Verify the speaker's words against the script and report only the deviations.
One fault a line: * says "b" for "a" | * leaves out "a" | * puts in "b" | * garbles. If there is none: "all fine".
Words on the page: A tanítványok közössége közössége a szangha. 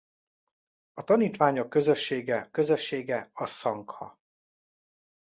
all fine